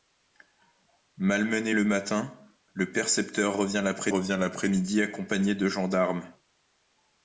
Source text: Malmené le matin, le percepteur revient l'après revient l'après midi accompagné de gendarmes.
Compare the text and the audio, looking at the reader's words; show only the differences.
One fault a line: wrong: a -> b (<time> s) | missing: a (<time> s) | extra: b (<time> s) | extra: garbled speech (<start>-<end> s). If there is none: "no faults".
no faults